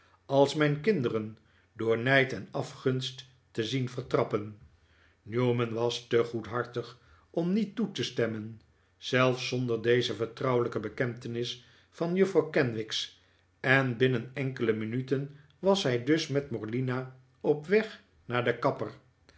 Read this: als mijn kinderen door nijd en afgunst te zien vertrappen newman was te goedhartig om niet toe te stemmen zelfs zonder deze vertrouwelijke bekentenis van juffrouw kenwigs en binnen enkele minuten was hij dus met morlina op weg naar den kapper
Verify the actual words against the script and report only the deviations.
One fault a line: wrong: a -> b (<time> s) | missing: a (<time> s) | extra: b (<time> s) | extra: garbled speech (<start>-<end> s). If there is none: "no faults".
no faults